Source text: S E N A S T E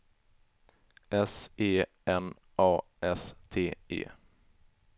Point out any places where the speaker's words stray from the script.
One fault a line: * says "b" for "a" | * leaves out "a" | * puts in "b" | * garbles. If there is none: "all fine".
all fine